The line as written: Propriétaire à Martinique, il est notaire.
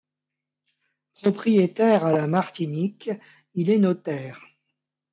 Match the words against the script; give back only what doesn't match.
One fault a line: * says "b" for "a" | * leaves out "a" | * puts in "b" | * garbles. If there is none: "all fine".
* puts in "la"